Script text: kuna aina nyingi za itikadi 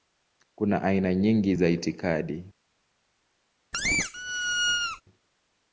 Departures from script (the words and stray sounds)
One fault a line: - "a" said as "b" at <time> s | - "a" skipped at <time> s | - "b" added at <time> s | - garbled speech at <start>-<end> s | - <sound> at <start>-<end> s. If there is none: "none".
- squeak at 3.7-5.0 s